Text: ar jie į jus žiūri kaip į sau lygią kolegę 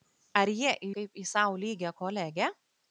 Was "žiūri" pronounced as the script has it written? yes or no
no